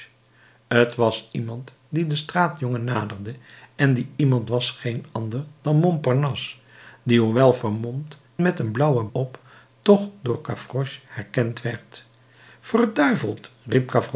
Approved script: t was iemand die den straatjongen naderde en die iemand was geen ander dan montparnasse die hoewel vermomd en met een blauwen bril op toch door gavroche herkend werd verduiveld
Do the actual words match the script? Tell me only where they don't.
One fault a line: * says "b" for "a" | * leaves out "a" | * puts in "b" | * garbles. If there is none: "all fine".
* leaves out "en"
* leaves out "bril"